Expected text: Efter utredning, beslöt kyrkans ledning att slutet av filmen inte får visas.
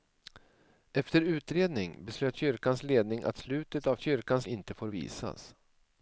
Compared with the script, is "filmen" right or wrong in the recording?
wrong